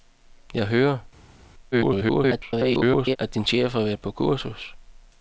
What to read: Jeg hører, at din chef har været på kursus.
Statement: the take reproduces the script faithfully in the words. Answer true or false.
false